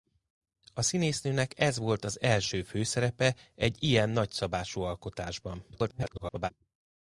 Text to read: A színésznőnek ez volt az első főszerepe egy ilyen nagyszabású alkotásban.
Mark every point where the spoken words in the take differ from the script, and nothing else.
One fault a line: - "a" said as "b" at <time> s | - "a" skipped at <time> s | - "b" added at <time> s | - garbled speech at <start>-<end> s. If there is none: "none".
- garbled speech at 5.7-6.5 s